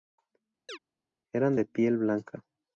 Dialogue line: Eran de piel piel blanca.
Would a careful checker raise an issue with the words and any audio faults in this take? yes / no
yes